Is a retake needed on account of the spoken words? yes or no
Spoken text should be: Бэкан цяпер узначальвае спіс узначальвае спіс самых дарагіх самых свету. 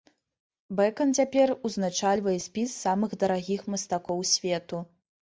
yes